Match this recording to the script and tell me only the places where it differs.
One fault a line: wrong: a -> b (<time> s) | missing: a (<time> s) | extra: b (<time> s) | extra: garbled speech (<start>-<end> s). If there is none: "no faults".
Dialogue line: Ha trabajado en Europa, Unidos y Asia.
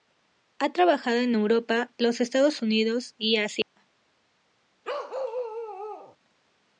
extra: los Estados (2.0 s)